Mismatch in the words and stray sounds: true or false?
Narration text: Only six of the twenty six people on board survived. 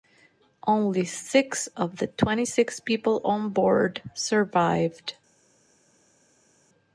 false